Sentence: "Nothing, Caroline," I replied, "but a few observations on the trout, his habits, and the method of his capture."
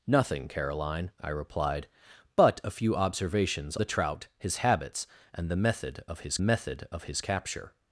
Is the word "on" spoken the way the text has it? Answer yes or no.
no